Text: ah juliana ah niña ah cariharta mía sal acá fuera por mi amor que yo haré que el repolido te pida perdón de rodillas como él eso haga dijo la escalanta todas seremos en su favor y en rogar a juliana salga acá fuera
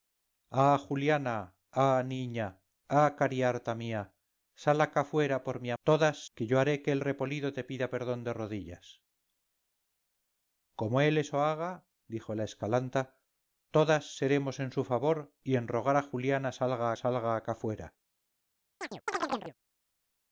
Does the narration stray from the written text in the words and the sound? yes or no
yes